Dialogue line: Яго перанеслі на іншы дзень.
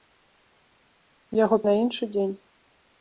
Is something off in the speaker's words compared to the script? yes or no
yes